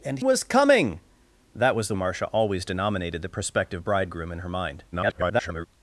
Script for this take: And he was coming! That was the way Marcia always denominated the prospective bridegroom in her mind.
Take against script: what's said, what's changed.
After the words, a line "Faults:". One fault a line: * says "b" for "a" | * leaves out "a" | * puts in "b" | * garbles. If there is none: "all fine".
And was coming! That was the Marcia always denominated the prospective bridegroom in her mind. [garbled]
Faults:
* leaves out "he"
* leaves out "way"
* garbles